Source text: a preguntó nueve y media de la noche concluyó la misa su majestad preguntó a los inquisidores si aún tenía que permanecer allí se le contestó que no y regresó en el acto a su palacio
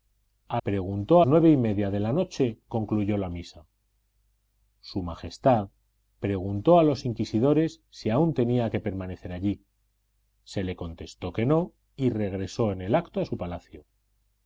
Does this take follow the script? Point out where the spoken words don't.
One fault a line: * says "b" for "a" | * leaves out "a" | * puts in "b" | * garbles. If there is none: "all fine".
all fine